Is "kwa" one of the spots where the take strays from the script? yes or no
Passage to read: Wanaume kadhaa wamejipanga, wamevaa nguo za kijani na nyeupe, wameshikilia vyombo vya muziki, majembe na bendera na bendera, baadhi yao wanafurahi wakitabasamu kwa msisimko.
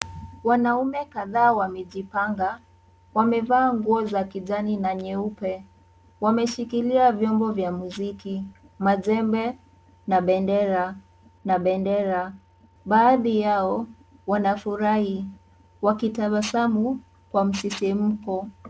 no